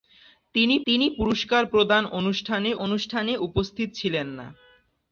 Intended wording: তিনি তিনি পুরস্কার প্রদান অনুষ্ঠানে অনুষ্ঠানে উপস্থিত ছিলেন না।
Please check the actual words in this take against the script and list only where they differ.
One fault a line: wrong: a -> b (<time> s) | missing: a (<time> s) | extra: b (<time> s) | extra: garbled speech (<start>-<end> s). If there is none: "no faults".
no faults